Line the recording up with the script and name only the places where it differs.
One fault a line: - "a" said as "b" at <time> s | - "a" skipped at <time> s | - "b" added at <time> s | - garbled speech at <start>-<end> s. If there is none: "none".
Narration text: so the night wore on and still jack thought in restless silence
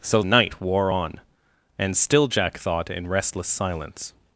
- "the" skipped at 0.2 s